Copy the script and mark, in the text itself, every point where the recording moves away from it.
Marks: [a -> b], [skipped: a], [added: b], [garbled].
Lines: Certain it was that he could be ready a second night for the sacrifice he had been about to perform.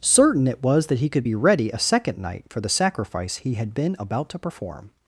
Certain it was that he could be ready a second night for the sacrifice he had been about to perform.